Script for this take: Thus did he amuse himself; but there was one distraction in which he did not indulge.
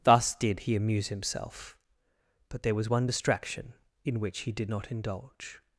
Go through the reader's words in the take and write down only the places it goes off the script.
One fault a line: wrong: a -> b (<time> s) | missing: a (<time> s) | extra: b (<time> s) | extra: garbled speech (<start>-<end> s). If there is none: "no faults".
no faults